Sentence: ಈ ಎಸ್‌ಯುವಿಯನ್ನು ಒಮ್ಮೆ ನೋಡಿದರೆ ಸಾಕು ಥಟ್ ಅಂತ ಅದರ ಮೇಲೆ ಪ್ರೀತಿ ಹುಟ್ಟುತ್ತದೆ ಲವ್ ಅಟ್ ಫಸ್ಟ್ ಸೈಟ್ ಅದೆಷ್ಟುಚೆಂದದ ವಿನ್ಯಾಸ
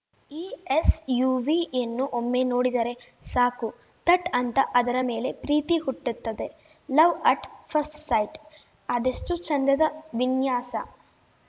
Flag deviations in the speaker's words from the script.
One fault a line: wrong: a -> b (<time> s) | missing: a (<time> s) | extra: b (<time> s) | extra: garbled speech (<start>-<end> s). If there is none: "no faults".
no faults